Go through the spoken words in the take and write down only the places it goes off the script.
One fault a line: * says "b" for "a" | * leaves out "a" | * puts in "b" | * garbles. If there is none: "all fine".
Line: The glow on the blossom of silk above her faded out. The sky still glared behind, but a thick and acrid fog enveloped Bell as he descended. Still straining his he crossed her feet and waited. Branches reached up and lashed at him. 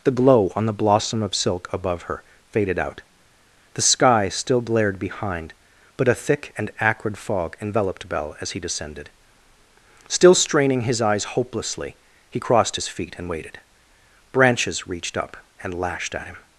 * puts in "eyes hopelessly"
* says "his" for "her"